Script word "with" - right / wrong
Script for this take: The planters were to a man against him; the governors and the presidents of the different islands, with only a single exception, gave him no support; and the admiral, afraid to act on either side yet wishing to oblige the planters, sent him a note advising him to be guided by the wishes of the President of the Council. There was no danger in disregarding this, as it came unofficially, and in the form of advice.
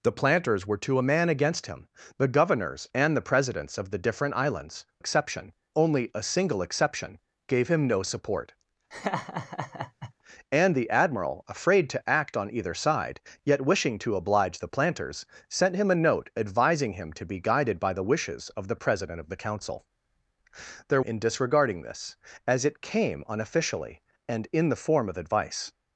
wrong